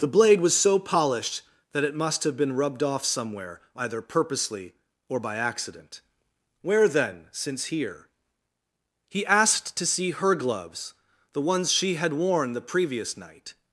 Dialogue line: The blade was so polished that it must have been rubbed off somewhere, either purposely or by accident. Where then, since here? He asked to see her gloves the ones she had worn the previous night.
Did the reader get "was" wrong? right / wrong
right